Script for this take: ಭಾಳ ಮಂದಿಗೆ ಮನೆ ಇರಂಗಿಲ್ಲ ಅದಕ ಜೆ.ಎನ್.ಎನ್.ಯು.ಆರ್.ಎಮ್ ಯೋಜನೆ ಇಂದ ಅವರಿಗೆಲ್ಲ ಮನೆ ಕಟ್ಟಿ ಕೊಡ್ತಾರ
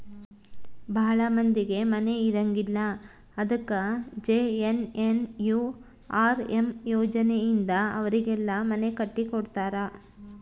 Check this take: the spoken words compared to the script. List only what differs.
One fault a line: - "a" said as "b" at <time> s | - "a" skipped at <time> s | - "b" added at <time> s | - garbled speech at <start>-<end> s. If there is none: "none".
none